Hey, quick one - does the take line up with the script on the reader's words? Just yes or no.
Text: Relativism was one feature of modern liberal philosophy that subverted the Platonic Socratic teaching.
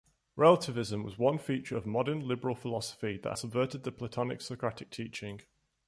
yes